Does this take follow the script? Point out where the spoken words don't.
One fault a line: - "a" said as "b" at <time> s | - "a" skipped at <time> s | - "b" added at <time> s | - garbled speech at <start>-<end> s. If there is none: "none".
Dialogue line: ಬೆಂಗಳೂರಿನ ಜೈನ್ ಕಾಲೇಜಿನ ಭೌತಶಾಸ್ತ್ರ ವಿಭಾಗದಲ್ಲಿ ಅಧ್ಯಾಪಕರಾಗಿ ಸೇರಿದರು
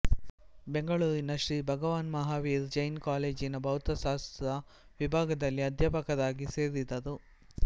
- "ಶ್ರೀ ಭಗವಾನ್ ಮಹಾವೀರ್" added at 1.4 s